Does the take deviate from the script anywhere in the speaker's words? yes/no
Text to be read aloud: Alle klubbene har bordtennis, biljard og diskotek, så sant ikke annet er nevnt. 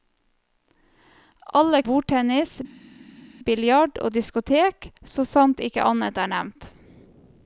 yes